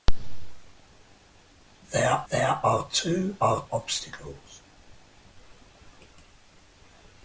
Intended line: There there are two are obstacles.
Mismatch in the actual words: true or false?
false